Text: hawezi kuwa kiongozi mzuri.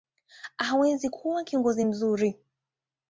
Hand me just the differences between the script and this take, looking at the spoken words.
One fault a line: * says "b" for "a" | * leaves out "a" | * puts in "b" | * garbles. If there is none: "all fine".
all fine